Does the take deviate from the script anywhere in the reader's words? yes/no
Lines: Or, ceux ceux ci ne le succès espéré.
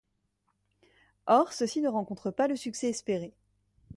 yes